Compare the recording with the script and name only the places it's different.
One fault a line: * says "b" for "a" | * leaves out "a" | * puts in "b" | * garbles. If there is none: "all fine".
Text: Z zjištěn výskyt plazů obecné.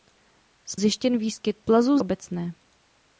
all fine